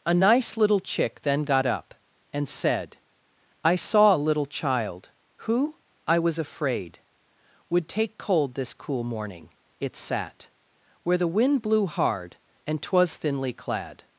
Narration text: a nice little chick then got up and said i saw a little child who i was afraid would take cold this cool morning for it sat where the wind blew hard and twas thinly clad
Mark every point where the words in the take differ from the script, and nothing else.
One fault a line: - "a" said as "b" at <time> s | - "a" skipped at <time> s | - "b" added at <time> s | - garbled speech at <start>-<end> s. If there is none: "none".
- "for" skipped at 9.5 s